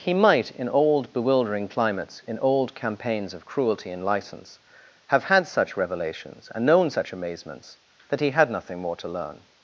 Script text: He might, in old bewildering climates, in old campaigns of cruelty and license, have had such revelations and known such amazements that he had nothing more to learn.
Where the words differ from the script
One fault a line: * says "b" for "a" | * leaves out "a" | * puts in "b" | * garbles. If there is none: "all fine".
all fine